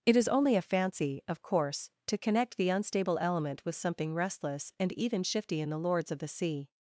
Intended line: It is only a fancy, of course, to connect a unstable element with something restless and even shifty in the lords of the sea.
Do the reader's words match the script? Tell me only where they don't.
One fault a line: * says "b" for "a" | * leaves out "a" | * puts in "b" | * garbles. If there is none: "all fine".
* says "the" for "a"